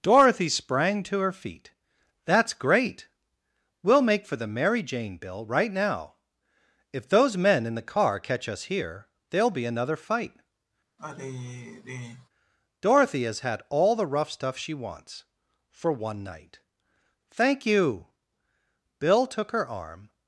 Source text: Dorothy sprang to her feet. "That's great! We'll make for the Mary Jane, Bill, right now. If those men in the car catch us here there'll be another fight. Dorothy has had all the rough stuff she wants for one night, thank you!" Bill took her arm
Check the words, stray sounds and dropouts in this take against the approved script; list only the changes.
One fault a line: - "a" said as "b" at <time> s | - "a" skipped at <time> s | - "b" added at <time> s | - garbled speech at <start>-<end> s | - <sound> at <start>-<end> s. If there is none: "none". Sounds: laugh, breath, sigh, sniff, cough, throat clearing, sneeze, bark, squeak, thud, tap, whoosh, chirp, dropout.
- sigh at 11.0-12.3 s